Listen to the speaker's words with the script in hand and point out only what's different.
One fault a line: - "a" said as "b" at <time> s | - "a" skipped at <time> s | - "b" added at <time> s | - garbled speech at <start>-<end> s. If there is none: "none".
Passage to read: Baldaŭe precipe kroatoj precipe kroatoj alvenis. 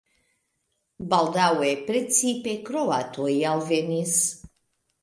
- "precipe kroatoj" skipped at 3.3 s